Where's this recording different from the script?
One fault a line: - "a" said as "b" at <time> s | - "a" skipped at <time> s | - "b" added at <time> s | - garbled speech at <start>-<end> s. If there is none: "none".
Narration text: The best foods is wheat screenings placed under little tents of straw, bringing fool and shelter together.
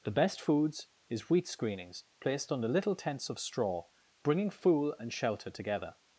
none